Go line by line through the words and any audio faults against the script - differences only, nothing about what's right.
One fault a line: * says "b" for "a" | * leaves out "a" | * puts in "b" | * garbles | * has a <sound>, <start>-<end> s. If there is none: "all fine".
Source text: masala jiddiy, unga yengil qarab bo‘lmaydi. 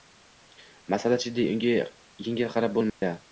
* has a dropout, 2.9-3.0 s